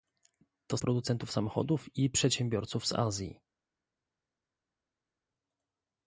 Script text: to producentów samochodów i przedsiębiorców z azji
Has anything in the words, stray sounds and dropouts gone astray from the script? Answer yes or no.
no